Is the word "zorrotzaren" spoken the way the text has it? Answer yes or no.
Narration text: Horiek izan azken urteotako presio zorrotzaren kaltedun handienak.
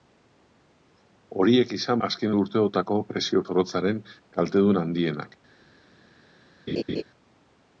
yes